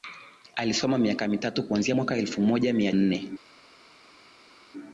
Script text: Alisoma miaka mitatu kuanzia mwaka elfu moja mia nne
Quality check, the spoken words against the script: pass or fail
pass